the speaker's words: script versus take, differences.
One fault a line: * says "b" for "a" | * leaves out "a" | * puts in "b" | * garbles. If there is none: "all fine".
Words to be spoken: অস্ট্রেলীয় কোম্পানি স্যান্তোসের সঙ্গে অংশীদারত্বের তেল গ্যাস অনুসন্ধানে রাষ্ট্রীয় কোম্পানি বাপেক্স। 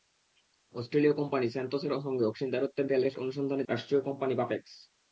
all fine